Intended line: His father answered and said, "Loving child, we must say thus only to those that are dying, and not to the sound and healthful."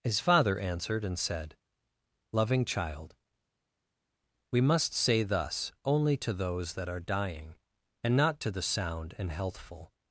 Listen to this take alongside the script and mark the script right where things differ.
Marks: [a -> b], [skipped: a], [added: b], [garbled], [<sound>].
His father answered and said, "Loving child, we must say thus only to those that are dying, and not to the sound and healthful."